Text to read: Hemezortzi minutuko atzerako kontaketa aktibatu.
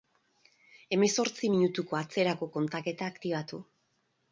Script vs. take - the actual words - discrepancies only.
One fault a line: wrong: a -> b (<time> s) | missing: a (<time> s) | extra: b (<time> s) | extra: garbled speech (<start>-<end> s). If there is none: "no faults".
no faults